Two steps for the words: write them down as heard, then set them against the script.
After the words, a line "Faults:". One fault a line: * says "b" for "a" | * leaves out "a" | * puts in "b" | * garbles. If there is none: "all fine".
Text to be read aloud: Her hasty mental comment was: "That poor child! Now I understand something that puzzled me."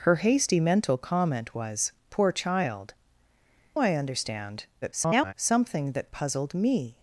Her hasty mental comment was: "Poor child! I understand [garbled] something that puzzled me."
Faults:
* leaves out "That"
* leaves out "Now"
* garbles